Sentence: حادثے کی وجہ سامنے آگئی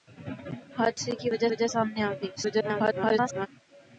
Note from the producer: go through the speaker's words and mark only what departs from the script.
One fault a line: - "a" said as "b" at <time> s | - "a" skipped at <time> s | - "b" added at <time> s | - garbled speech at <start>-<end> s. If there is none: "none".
- "وجہ" added at 1.5 s
- garbled speech at 2.4-3.5 s